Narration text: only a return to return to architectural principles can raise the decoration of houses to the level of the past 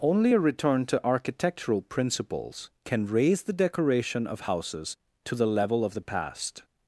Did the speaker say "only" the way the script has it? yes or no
yes